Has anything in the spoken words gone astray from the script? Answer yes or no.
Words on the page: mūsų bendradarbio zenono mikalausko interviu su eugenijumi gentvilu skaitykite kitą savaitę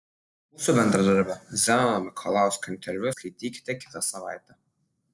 yes